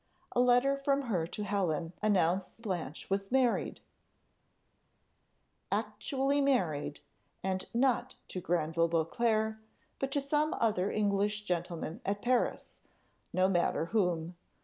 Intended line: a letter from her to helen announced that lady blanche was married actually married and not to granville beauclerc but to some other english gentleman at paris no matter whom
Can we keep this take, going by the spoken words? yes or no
no